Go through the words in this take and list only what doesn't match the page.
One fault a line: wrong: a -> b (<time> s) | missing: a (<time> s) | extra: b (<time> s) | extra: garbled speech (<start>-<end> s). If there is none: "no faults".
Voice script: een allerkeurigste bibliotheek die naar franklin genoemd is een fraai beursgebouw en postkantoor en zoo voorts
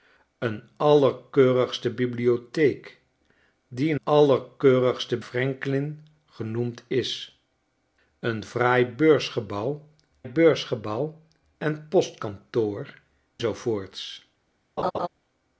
wrong: naar -> allerkeurigste (4.0 s)
extra: beursgebouw (10.2 s)
missing: en (13.0 s)